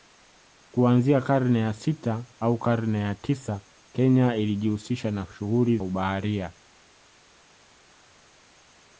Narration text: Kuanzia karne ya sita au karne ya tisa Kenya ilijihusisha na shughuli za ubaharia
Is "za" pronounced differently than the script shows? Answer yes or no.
yes